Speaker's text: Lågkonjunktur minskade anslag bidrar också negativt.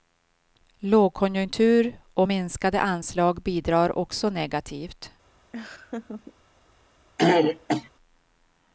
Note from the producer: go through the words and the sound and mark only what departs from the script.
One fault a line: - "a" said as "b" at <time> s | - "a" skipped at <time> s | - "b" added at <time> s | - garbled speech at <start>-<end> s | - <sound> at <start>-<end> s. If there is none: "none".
- "och" added at 2.1 s
- laugh at 5.5-6.3 s
- throat clearing at 7.2-7.9 s